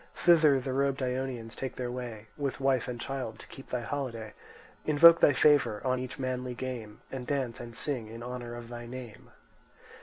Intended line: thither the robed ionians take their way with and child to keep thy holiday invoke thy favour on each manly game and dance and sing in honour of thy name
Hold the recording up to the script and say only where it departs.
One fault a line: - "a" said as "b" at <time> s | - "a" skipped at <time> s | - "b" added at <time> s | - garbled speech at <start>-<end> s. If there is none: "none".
- "wife" added at 2.6 s